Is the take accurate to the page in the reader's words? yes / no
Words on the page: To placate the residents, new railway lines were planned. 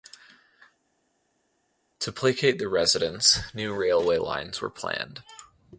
yes